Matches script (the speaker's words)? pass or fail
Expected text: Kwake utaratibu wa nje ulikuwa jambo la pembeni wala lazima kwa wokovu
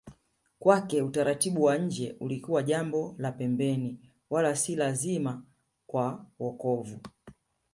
fail